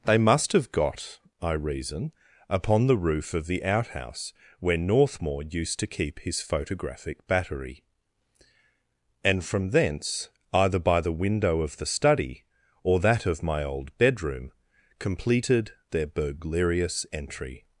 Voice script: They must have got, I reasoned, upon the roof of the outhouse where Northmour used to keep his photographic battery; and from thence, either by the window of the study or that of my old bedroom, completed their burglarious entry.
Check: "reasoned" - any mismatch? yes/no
yes